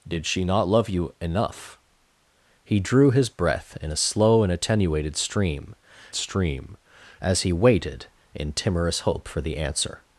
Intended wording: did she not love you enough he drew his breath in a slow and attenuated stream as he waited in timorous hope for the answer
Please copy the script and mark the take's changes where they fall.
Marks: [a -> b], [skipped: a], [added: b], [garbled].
did she not love you enough he drew his breath in a slow and attenuated stream [added: stream] as he waited in timorous hope for the answer